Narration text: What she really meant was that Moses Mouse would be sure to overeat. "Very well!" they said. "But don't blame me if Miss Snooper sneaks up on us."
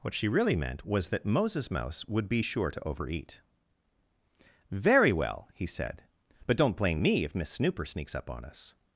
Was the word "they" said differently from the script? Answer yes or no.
yes